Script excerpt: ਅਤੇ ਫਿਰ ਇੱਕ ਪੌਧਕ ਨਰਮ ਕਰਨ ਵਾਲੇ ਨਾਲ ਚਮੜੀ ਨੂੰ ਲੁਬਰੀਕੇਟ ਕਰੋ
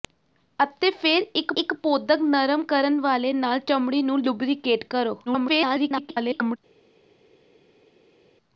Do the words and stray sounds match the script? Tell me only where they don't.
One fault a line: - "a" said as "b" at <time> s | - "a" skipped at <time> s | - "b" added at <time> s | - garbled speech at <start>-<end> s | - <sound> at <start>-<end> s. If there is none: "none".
- "ਇੱਕ" added at 1.6 s
- garbled speech at 5.3-6.6 s